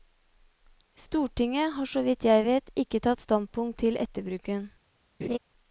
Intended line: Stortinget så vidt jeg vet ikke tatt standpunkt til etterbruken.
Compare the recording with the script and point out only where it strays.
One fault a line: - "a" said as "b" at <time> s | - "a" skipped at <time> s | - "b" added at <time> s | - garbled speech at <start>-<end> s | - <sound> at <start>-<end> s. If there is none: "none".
- "har" added at 1.7 s
- laugh at 5.2-5.4 s